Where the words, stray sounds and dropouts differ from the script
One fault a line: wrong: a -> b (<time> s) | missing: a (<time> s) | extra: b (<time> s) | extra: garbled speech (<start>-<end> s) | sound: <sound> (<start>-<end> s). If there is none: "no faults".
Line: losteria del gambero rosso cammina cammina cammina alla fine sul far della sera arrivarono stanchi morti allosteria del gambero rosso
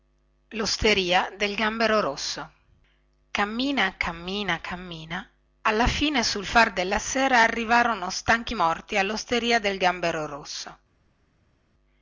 no faults